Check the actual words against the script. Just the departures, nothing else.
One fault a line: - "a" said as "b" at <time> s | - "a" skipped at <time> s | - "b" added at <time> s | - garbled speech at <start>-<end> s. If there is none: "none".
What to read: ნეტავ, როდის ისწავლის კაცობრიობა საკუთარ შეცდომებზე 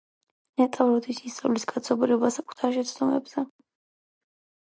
none